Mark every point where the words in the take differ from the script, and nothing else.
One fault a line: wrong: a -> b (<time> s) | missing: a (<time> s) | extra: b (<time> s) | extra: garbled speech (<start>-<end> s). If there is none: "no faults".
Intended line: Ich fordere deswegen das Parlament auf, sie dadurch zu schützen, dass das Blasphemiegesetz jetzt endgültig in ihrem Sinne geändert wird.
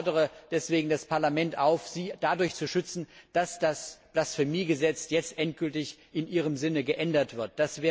no faults